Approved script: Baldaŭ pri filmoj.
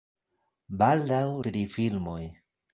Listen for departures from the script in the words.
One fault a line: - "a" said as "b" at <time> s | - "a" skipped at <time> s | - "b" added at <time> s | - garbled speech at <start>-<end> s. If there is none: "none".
none